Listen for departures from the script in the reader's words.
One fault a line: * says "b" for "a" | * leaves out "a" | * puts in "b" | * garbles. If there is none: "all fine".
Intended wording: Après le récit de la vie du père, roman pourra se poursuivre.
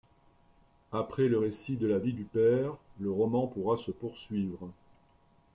* puts in "le"